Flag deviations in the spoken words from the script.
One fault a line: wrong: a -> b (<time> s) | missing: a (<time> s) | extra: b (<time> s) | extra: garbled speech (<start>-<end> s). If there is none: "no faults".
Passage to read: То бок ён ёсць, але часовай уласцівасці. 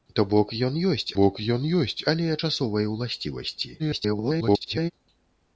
extra: бок ён ёсць (1.1 s)
extra: garbled speech (3.8-4.9 s)